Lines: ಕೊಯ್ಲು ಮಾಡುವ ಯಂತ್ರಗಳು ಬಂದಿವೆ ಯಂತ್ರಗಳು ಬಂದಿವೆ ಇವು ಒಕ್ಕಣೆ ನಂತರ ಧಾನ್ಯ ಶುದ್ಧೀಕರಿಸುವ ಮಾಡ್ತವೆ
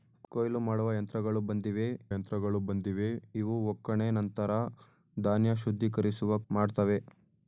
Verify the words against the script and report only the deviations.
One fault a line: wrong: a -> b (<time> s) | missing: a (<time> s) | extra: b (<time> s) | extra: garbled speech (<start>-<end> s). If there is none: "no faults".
no faults